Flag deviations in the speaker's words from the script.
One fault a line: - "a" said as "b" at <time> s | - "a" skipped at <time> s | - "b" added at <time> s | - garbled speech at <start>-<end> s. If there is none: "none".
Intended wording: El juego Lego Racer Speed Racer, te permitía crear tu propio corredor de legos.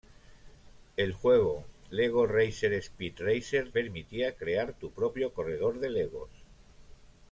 - "te" skipped at 3.7 s